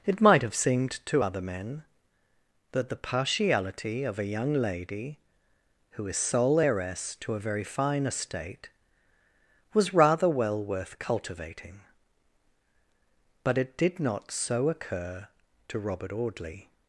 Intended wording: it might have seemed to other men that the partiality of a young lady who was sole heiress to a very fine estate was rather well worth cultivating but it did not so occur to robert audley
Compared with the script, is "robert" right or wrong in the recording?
right